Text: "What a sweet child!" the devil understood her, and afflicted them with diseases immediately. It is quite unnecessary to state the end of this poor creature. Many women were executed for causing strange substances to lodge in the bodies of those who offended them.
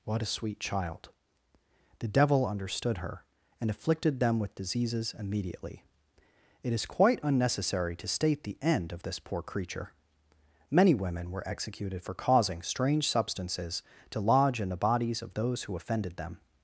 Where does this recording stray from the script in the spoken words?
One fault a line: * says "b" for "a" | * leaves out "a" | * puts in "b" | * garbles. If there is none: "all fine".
all fine